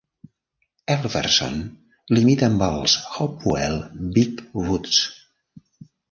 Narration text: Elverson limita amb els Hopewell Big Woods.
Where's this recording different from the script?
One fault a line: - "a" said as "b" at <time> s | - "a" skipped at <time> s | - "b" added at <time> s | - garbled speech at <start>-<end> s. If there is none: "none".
none